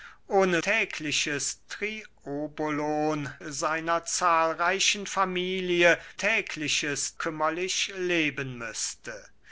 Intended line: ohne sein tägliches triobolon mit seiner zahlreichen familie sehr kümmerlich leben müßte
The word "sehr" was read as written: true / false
false